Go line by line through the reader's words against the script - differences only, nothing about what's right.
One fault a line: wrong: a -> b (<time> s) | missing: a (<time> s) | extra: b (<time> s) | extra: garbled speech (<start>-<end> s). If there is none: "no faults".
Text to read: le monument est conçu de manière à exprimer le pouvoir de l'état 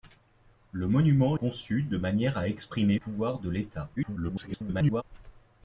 missing: est (1.4 s)
missing: le (3.0 s)
extra: garbled speech (4.0-5.0 s)